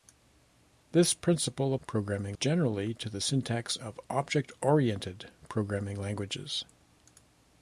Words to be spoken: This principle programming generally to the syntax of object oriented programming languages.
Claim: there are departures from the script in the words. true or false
false